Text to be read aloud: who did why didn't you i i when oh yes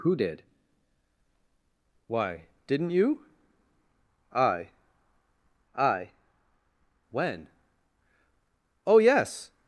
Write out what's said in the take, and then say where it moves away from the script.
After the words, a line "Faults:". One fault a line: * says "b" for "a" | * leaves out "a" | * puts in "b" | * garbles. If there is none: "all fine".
who did why didn't you i i when oh yes
Faults:
all fine